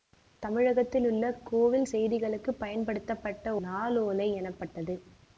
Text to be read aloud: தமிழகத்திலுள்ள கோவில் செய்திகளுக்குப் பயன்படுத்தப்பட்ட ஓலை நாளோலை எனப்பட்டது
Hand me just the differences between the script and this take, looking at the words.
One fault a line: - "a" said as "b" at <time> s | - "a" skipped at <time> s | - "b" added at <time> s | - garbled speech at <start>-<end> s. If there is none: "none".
- "ஓலை" skipped at 3.6 s